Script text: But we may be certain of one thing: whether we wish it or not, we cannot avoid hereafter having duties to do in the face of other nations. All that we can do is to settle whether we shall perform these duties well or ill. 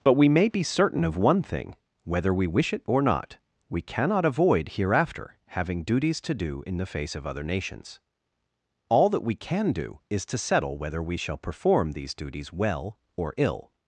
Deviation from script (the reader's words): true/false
false